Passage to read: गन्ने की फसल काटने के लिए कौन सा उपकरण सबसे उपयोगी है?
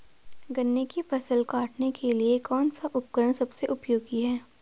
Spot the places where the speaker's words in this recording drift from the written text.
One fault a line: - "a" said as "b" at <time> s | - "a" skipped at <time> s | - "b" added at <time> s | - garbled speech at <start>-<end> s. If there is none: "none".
none